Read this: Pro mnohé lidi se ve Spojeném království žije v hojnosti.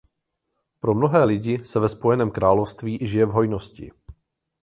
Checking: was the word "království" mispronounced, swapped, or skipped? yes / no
no